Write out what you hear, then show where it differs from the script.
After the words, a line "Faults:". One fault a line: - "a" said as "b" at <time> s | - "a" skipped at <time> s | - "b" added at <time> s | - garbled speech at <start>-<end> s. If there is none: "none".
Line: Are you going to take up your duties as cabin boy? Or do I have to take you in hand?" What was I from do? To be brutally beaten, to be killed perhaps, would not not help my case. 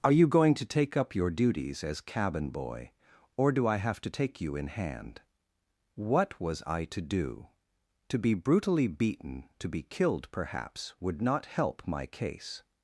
Are you going to take up your duties as cabin boy? Or do I have to take you in hand?" What was I to do? To be brutally beaten, to be killed perhaps, would not help my case.
Faults:
- "from" said as "to" at 6.9 s
- "not" skipped at 11.5 s